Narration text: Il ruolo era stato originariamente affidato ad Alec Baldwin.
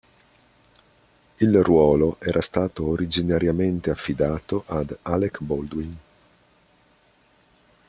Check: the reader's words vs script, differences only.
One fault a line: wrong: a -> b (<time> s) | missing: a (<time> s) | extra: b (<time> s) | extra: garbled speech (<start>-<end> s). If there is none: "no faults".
no faults